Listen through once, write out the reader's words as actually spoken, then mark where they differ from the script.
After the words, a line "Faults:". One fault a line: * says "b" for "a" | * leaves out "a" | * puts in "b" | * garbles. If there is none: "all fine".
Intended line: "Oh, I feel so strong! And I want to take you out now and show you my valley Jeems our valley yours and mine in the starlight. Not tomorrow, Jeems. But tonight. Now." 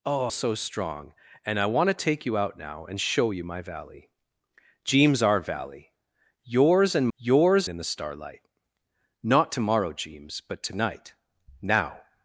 "Oh, so strong! And I want to take you out now and show you my valley Jeems our valley yours and yours in the starlight. Not tomorrow, Jeems. But tonight. Now."
Faults:
* leaves out "I feel"
* says "yours" for "mine"